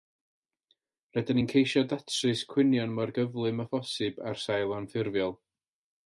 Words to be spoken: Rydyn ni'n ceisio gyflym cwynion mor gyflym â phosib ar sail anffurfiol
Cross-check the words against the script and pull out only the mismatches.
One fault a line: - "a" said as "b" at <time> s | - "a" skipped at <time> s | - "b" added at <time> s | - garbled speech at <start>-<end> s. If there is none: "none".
- "gyflym" said as "datrys" at 1.9 s